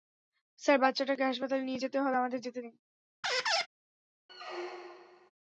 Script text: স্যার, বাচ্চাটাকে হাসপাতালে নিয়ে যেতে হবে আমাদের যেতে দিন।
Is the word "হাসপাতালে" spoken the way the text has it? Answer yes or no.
yes